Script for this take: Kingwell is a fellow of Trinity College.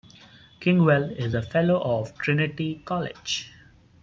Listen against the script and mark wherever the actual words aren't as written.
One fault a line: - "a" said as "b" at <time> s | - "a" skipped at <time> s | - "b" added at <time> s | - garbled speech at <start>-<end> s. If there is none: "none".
none